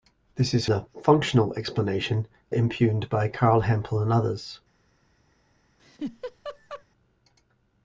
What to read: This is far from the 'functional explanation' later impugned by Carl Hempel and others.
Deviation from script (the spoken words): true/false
true